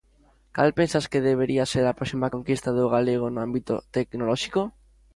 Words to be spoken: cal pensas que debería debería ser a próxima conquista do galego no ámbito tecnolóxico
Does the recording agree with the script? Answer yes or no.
no